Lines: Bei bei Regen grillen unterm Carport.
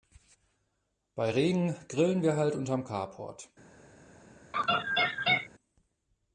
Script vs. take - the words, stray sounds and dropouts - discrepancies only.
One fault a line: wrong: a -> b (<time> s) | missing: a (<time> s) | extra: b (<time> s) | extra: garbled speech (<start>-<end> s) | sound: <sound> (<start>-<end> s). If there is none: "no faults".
missing: bei (1.3 s)
extra: wir halt (2.2 s)
sound: laugh (4.5-5.5 s)